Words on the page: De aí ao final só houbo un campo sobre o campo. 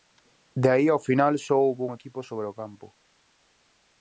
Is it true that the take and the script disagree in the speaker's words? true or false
true